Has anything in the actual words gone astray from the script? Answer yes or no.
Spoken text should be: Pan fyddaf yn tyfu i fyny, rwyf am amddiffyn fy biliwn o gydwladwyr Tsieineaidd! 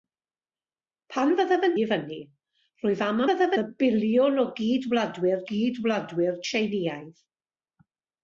yes